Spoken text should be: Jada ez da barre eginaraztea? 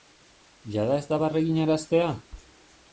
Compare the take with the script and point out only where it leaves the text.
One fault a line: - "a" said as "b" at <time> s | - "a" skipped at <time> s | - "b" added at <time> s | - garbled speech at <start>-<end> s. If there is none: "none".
none